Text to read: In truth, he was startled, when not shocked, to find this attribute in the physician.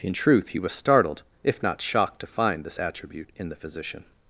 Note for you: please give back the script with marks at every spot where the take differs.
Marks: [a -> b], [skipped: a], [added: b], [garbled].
In truth, he was startled, [when -> if] not shocked, to find this attribute in the physician.